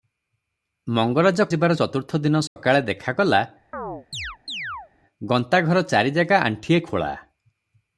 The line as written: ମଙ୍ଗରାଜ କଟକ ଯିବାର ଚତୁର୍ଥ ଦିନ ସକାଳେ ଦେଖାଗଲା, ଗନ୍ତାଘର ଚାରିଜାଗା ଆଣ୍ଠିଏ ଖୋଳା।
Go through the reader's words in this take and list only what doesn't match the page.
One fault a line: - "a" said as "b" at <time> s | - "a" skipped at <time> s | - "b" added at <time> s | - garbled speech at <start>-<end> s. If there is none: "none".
- "କଟକ" skipped at 1.4 s